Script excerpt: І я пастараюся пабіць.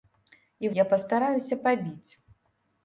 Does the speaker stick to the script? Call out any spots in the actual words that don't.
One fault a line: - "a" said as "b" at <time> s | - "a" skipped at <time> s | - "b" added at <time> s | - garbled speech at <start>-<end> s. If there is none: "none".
none